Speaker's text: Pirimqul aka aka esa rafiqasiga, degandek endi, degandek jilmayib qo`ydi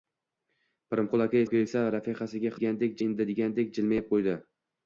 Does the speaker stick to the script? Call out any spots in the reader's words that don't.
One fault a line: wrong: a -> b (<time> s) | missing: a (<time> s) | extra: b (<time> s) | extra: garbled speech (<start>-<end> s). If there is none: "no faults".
no faults